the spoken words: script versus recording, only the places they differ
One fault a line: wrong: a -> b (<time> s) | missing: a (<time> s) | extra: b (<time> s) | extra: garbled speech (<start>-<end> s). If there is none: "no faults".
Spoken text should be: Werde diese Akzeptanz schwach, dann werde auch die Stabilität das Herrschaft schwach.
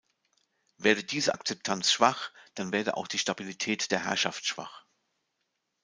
wrong: das -> der (3.9 s)